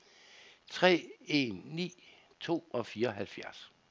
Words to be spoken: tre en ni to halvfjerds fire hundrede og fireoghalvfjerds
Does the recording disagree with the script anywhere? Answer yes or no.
yes